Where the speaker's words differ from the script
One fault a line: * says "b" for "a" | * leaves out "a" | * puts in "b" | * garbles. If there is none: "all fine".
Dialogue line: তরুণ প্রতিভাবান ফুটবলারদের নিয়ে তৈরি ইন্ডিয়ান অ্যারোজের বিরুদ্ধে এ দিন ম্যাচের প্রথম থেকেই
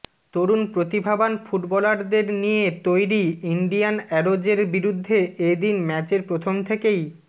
all fine